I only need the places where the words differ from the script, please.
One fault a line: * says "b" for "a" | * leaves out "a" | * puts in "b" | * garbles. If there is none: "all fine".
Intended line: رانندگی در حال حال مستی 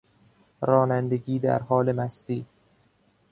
* leaves out "حال"